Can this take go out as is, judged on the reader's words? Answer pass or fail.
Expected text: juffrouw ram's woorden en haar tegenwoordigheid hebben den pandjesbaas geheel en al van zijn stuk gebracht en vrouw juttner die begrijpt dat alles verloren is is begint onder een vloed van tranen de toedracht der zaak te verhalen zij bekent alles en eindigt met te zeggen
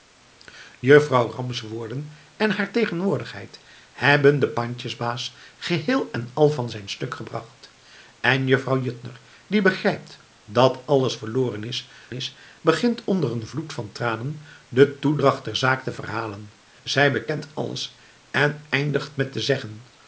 pass